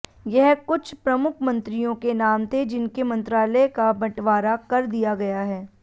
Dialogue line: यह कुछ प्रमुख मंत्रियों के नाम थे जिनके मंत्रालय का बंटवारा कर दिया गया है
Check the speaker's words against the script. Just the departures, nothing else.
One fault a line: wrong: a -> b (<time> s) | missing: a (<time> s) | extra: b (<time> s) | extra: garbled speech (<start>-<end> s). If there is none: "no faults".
no faults